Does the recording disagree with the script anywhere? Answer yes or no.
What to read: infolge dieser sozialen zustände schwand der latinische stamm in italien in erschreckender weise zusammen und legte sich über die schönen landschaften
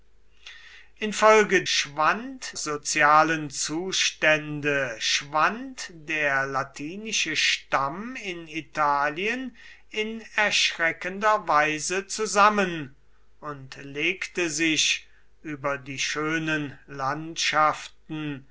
yes